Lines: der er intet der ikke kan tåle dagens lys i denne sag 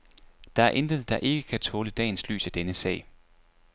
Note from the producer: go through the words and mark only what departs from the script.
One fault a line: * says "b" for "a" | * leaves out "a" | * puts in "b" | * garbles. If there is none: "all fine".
all fine